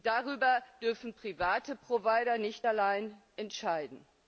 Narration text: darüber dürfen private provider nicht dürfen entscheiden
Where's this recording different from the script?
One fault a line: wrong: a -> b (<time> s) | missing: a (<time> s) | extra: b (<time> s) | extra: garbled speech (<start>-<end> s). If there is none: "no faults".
wrong: dürfen -> allein (2.6 s)